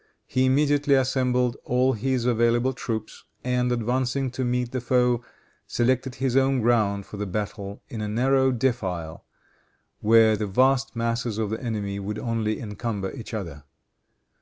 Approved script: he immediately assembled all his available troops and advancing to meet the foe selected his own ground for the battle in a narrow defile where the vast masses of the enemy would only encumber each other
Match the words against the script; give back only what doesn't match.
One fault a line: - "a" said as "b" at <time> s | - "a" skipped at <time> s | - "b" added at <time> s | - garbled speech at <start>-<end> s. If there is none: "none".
none